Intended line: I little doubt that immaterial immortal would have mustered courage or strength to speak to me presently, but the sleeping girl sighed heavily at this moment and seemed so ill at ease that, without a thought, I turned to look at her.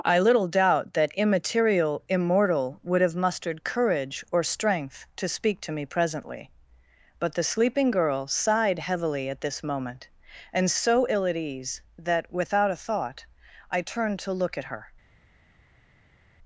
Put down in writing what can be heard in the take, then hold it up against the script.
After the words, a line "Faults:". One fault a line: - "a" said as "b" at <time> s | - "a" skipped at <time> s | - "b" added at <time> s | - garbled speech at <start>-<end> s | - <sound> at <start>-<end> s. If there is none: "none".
I little doubt that immaterial immortal would have mustered courage or strength to speak to me presently, but the sleeping girl sighed heavily at this moment and so ill at ease that, without a thought, I turned to look at her.
Faults:
- "seemed" skipped at 10.7 s